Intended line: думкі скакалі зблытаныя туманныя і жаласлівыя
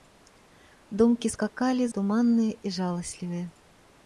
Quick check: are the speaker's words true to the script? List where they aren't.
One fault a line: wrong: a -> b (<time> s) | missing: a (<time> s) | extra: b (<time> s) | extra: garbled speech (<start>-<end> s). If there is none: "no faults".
missing: зблытаныя (1.9 s)